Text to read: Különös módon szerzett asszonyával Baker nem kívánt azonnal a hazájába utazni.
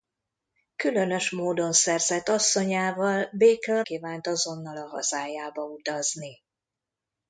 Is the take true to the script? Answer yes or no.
no